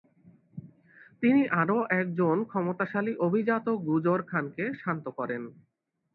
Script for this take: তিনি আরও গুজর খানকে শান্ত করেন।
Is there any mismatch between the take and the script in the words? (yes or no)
yes